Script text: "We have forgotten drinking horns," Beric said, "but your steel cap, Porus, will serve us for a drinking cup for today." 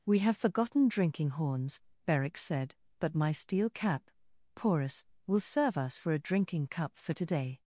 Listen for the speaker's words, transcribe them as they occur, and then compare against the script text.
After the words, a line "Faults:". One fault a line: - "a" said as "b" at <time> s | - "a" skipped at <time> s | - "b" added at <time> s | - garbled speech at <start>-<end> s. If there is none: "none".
"We have forgotten drinking horns," Beric said, "but my steel cap, Porus, will serve us for a drinking cup for today."
Faults:
- "your" said as "my" at 3.1 s